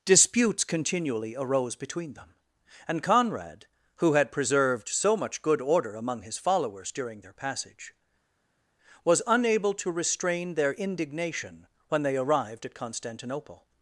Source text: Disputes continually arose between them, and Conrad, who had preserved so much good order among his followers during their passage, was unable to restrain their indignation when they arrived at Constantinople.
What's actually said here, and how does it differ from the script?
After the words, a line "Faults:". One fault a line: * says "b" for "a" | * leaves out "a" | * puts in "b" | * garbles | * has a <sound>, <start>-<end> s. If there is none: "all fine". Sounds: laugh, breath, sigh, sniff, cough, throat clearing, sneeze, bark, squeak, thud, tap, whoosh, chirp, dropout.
Disputes continually arose between them, and Conrad, who had preserved so much good order among his followers during their passage, was unable to restrain their indignation when they arrived at Constantinople.
Faults:
all fine